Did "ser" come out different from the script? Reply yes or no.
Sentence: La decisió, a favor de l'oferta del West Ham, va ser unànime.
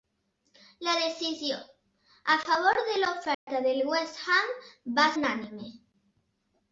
yes